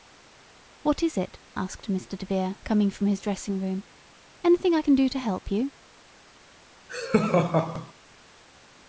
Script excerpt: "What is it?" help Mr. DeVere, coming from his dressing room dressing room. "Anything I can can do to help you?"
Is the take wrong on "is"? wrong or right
right